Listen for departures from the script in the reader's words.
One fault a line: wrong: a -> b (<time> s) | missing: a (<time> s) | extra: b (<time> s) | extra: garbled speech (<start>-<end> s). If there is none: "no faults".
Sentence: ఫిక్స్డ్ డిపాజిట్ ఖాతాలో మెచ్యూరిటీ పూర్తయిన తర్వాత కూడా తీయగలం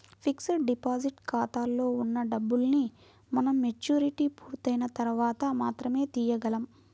extra: ఉన్న డబ్బుల్ని మనం (2.0 s)
wrong: కూడా -> మాత్రమే (5.6 s)